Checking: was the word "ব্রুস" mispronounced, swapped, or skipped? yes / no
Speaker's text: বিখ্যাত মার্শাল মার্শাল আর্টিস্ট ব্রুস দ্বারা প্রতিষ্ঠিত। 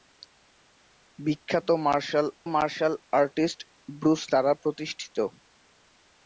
no